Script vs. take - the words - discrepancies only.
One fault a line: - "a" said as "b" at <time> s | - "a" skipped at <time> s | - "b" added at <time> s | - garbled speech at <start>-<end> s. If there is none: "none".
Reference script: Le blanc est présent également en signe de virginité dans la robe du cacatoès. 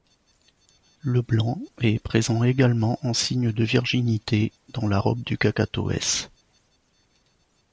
none